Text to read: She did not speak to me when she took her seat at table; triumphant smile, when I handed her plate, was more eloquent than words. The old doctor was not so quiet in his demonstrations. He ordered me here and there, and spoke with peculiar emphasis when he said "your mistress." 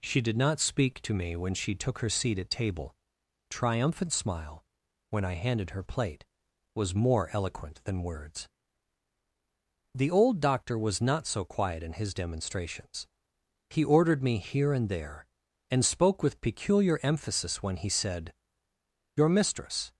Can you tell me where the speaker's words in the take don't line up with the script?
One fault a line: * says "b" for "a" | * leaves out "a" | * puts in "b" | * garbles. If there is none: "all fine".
all fine